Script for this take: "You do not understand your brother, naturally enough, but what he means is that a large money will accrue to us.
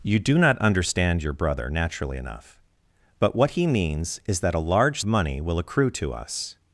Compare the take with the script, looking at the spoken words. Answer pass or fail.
pass